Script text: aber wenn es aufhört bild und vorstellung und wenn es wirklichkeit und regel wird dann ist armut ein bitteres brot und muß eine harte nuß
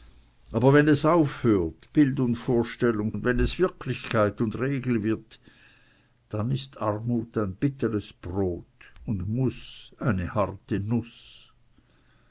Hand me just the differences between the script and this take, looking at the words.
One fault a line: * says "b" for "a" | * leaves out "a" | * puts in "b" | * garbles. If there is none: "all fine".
all fine